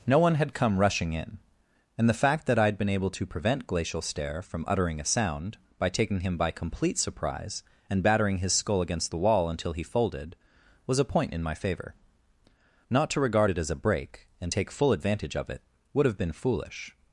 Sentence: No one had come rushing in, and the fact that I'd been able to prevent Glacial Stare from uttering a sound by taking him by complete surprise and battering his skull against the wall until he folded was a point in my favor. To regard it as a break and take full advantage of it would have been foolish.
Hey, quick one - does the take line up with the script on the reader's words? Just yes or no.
no